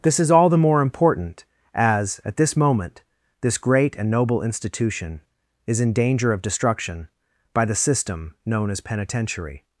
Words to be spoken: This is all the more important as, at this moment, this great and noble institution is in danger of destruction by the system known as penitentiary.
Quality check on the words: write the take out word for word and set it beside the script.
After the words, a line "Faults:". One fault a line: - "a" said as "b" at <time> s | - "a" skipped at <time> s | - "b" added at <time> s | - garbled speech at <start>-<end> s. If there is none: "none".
This is all the more important as, at this moment, this great and noble institution is in danger of destruction by the system known as penitentiary.
Faults:
none